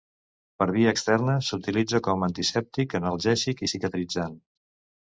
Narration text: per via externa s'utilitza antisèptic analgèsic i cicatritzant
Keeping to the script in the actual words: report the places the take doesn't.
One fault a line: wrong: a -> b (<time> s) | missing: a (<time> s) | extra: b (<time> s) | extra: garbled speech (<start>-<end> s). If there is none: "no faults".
extra: com (2.1 s)